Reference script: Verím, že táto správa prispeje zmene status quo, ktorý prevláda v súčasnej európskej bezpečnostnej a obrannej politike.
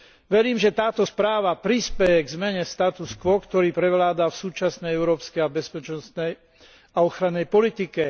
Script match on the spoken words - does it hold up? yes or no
no